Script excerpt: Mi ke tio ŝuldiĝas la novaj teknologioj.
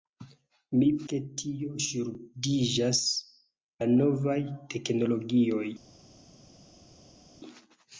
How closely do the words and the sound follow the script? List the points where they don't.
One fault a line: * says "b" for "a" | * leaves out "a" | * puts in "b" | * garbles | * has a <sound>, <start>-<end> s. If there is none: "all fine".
all fine